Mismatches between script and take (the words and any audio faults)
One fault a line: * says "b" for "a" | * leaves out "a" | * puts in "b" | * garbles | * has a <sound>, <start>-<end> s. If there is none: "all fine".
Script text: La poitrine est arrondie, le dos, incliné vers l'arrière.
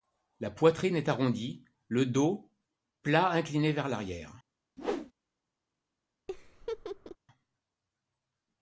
* puts in "plat"
* has a whoosh, 4.8-5.1 s
* has a laugh, 6.3-7.2 s